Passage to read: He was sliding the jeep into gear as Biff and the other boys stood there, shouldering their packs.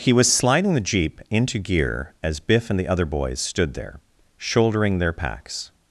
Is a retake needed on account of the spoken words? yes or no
no